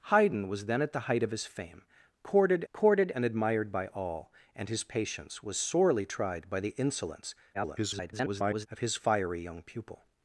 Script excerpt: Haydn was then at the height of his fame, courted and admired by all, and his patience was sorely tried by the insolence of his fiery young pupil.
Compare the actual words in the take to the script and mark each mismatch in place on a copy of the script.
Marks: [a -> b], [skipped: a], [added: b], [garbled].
Haydn was then at the height of his fame, courted [added: courted] and admired by all, and his patience was sorely tried by the insolence [garbled] of his fiery young pupil.